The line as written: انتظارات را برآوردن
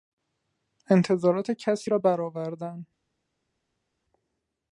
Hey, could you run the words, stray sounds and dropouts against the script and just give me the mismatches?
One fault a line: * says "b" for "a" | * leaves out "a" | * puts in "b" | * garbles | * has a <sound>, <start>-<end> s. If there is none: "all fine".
* puts in "کسی"